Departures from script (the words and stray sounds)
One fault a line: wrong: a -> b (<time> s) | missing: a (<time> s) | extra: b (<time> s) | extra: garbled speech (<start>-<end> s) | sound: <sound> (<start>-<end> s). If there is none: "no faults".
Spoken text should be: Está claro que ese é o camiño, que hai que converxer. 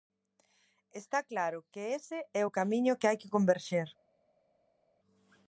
no faults